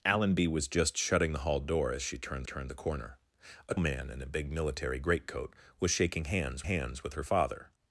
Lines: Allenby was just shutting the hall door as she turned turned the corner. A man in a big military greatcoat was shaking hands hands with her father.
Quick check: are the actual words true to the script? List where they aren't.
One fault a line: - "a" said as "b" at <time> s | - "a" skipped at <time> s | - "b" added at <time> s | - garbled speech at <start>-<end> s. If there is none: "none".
none